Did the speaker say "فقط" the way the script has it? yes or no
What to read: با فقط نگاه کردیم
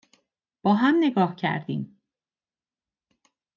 no